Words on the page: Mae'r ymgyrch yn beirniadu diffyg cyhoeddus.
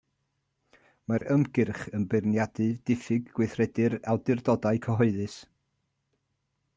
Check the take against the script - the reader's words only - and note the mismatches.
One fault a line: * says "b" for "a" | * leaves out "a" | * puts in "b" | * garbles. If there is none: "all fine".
* puts in "gweithredu'r awdurdodau"